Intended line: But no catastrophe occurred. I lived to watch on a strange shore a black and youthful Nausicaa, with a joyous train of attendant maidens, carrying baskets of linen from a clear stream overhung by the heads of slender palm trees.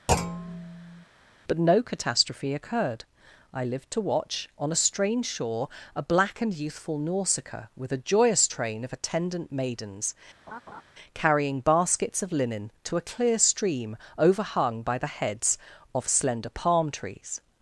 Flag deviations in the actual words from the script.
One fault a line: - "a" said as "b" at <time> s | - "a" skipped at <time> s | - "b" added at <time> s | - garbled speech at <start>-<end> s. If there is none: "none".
- "from" said as "to" at 12.8 s